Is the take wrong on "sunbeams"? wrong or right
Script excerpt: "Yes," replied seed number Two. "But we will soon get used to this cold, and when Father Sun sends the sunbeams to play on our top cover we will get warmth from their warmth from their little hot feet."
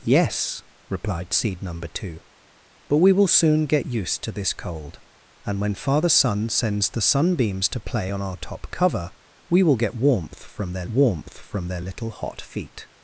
right